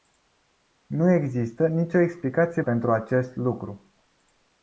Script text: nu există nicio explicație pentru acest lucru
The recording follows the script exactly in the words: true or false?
true